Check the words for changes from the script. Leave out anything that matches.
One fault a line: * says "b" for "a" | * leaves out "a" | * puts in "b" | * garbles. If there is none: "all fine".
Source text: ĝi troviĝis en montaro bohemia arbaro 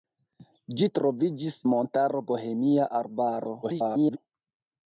* leaves out "en"
* garbles